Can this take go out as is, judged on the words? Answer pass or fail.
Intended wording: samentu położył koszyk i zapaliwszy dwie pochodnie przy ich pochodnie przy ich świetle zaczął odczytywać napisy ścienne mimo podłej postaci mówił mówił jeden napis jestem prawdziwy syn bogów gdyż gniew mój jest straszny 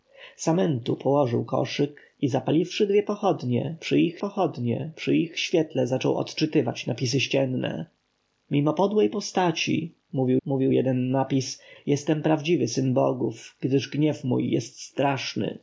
pass